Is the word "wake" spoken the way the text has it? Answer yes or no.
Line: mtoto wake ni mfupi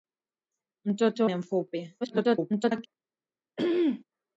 no